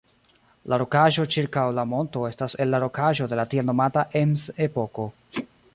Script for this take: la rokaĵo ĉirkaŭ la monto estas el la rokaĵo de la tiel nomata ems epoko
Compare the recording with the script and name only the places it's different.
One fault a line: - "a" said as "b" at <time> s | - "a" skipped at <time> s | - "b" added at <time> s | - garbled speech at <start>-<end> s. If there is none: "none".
none